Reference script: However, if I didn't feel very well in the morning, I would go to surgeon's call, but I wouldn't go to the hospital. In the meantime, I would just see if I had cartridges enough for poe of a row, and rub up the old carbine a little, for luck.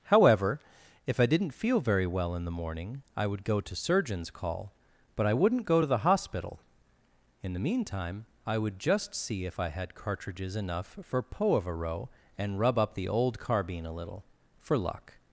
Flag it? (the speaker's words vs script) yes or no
no